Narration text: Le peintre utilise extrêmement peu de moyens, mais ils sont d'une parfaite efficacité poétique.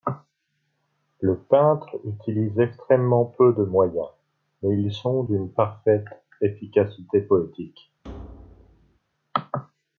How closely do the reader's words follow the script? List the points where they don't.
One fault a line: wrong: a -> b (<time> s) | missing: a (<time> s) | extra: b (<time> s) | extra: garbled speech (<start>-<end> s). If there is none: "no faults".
no faults